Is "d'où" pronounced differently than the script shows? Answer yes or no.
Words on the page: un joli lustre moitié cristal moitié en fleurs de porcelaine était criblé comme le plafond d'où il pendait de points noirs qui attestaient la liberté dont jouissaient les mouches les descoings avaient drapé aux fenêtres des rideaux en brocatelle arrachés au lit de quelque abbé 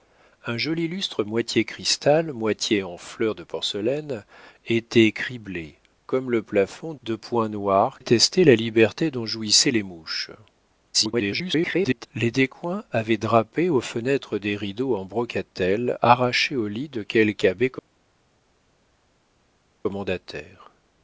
yes